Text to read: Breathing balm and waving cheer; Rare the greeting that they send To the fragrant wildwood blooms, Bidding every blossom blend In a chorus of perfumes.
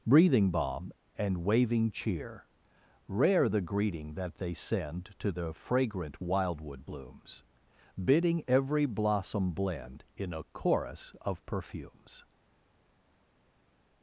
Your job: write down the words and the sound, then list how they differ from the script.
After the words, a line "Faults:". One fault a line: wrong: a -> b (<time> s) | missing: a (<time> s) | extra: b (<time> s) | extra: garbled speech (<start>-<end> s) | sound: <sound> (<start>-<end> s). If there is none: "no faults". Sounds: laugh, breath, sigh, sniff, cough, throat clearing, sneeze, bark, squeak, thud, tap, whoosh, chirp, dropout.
Breathing balm and waving cheer; Rare the greeting that they send To the fragrant wildwood blooms, Bidding every blossom blend In a chorus of perfumes.
Faults:
no faults